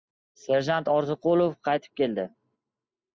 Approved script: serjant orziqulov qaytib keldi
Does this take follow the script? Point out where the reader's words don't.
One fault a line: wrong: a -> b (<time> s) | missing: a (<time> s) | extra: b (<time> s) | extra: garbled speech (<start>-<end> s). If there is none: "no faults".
no faults